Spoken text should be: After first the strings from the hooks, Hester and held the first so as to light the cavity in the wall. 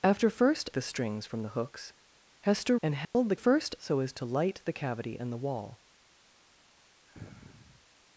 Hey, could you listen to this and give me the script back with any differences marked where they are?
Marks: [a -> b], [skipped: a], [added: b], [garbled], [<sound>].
After first the strings from the hooks, Hester and held [dropout] the first so as to light the cavity in the wall. [sniff]